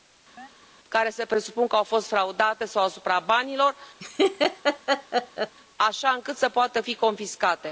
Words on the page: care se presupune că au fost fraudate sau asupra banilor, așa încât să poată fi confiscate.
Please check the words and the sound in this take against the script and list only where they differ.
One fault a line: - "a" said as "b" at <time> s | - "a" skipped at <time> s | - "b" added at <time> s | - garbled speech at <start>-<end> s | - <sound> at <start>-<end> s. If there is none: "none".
- chirp at 0.4-0.5 s
- laugh at 4.0-5.5 s